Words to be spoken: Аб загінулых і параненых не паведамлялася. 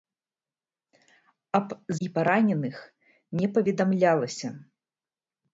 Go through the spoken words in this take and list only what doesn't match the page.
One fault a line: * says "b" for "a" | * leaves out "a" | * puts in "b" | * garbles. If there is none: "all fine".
* leaves out "загінулых"